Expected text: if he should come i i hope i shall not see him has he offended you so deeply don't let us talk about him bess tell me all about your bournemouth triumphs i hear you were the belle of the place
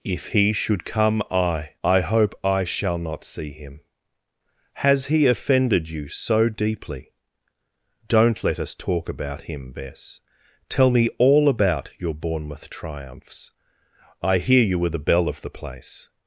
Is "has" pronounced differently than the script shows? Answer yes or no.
no